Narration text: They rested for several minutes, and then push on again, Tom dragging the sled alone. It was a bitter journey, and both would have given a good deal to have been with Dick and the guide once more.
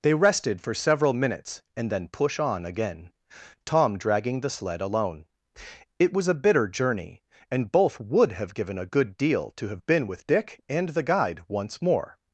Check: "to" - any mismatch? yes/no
no